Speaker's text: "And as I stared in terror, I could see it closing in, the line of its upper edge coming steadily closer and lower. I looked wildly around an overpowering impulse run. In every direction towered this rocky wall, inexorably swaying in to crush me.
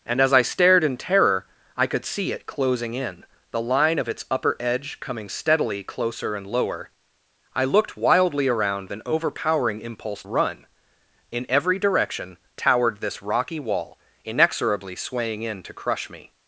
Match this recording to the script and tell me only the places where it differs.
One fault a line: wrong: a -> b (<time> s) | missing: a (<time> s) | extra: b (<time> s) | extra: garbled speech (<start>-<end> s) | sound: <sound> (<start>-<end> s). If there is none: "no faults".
no faults